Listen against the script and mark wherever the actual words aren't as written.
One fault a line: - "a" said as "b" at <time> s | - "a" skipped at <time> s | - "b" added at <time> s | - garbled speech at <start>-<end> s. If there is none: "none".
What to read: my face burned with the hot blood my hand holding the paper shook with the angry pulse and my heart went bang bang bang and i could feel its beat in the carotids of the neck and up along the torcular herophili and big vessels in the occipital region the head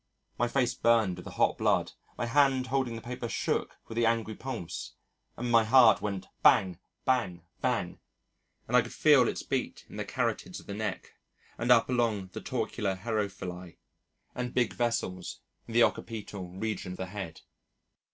none